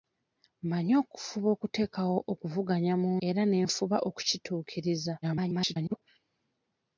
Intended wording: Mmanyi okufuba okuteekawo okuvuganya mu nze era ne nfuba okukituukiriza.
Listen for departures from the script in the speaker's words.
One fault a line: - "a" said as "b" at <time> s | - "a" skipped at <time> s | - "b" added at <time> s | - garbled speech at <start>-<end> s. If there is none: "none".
- "nze" skipped at 3.1 s
- garbled speech at 5.2-6.0 s